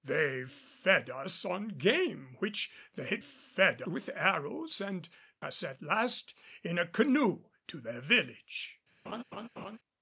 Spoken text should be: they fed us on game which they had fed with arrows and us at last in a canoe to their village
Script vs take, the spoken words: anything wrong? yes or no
no